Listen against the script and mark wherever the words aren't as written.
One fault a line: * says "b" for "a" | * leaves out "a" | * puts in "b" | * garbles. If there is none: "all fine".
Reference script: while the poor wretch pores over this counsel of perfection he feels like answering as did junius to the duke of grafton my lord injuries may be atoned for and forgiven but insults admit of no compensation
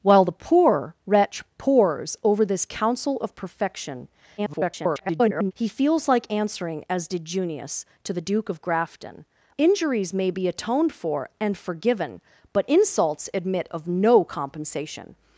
* garbles
* leaves out "my lord"